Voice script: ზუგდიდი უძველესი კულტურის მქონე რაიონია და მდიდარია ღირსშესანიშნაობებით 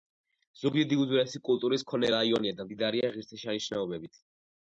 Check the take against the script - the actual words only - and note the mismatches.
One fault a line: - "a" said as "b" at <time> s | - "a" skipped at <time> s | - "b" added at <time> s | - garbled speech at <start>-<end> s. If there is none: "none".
none